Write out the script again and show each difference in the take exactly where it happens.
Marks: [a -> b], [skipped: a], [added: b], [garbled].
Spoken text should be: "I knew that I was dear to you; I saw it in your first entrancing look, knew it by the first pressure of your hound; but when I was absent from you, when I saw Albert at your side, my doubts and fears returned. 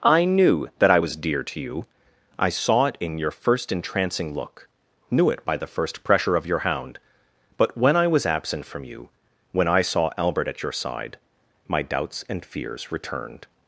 "I knew that I was dear to you; I saw it in your first entrancing look, knew it by the first pressure of your hound; but when I was absent from you, when I saw Albert at your side, my doubts and fears returned.